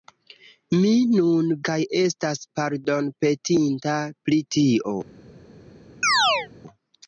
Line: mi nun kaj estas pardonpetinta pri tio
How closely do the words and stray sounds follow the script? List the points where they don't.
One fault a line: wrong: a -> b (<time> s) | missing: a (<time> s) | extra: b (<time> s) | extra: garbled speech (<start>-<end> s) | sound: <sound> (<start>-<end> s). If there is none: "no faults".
sound: chirp (6.0-6.5 s)